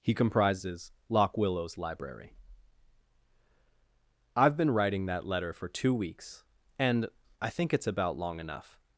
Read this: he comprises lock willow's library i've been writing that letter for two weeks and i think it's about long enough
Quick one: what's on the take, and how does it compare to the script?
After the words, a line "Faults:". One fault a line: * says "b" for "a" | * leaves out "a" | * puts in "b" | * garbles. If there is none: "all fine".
he comprises lock willow's library i've been writing that letter for two weeks and i think it's about long enough
Faults:
all fine